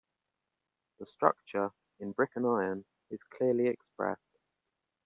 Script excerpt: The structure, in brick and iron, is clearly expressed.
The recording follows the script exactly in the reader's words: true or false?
true